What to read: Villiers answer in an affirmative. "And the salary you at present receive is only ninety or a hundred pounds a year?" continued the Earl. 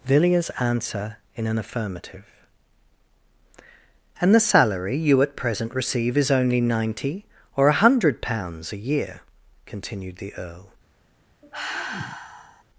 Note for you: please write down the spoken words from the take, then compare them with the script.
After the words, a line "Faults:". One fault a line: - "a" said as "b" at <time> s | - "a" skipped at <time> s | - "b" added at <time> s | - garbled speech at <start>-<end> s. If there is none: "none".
Villiers answer in an affirmative. "And the salary you at present receive is only ninety or a hundred pounds a year?" continued the Earl.
Faults:
none